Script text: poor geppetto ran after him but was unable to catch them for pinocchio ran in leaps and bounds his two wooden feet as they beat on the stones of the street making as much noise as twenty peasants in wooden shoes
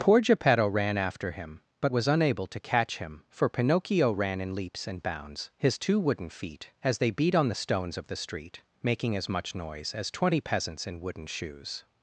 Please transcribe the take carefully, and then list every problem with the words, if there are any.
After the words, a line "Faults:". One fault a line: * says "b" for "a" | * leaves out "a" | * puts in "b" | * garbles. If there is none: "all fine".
poor geppetto ran after him but was unable to catch him for pinocchio ran in leaps and bounds his two wooden feet as they beat on the stones of the street making as much noise as twenty peasants in wooden shoes
Faults:
* says "him" for "them"